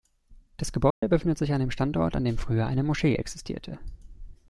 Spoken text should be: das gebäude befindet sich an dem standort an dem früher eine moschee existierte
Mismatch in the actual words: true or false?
false